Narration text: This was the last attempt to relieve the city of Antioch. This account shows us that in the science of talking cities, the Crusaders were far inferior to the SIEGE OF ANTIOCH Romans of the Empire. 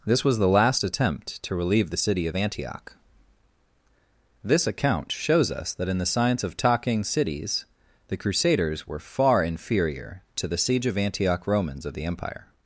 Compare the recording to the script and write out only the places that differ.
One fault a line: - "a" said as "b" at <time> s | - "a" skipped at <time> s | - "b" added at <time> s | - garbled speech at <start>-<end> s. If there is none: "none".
none